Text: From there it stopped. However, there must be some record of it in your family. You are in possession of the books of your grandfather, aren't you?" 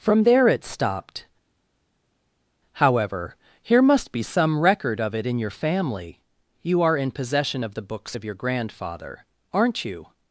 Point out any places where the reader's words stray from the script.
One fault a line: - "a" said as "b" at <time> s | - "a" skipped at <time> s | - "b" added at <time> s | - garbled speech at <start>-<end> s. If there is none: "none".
- "there" said as "here" at 3.6 s